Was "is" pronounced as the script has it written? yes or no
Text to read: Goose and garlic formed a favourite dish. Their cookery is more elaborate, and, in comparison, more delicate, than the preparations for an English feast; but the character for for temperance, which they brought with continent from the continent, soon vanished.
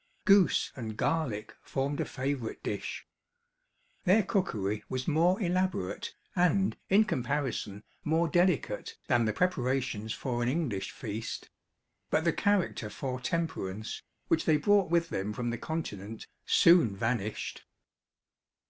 no